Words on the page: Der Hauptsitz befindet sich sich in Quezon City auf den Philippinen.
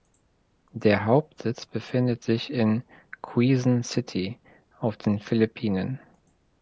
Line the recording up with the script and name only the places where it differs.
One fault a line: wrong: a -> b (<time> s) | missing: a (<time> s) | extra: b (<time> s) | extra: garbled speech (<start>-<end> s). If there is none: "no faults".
missing: sich (2.5 s)